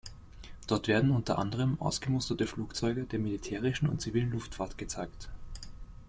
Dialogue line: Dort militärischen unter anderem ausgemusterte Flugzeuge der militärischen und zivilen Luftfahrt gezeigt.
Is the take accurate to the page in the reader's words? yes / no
no